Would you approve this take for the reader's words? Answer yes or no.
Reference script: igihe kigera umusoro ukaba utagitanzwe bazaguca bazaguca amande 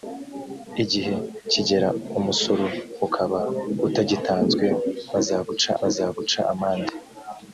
yes